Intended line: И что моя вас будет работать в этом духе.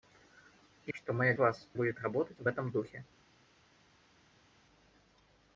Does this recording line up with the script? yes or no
yes